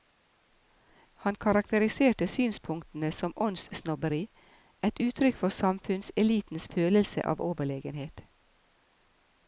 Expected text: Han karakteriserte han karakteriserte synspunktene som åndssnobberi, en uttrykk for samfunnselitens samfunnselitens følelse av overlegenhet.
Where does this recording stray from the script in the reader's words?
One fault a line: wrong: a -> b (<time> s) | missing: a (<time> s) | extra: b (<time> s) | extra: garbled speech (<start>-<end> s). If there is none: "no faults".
missing: han karakteriserte (2.3 s)
wrong: en -> et (4.9 s)
missing: samfunnselitens (6.7 s)